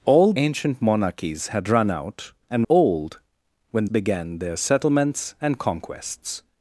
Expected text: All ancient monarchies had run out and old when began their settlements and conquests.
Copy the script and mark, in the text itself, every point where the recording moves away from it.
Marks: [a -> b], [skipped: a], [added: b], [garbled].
All ancient monarchies had run out and old when began their settlements and conquests.